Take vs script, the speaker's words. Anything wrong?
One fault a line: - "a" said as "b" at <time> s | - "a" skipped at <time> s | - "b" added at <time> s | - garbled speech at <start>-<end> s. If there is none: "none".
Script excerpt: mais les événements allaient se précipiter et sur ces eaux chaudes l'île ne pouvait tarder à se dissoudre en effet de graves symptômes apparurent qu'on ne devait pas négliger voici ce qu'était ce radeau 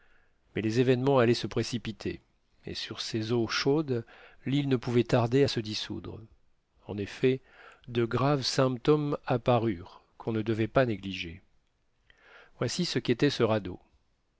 none